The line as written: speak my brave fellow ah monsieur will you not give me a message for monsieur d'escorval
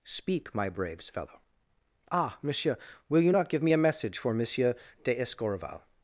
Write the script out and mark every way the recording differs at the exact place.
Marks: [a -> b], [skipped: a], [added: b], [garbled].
speak my [brave -> braves] fellow ah monsieur will you not give me a message for monsieur d'escorval